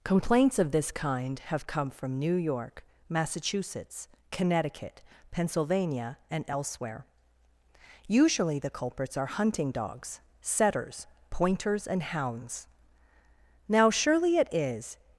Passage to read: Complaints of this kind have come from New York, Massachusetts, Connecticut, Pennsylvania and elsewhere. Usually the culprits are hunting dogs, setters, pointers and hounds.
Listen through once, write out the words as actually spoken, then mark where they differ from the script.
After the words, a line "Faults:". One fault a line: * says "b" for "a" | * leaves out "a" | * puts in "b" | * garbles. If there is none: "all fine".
Complaints of this kind have come from New York, Massachusetts, Connecticut, Pennsylvania and elsewhere. Usually the culprits are hunting dogs, setters, pointers and hounds. Now, surely it is
Faults:
* puts in "Now surely it is"